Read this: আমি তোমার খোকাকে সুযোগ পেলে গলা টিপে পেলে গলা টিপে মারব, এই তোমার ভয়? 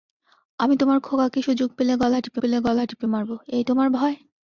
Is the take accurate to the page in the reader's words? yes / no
yes